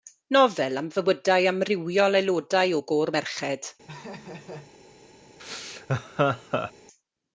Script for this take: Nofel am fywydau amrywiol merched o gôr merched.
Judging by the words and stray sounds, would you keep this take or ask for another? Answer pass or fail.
fail